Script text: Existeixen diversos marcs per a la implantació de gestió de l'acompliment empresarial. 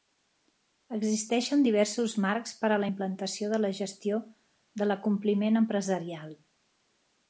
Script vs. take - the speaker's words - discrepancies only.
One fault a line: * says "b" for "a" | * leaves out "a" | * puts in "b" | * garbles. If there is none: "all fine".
* puts in "la"